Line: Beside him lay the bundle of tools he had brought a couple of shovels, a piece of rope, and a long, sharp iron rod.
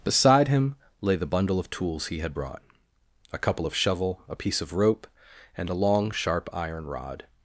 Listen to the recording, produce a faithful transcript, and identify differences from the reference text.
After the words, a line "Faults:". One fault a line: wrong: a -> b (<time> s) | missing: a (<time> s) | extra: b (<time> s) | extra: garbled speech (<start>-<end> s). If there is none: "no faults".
Beside him lay the bundle of tools he had brought a couple of shovel, a piece of rope, and a long, sharp iron rod.
Faults:
wrong: shovels -> shovel (3.7 s)